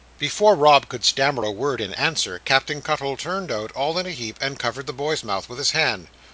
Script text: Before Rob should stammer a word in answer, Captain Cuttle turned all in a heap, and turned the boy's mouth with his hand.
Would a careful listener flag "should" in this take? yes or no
yes